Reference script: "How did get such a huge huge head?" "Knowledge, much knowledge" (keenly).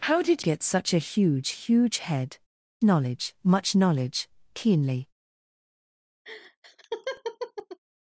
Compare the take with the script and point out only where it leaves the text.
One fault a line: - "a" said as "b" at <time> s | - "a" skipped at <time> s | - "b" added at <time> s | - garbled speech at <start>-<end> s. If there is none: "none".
none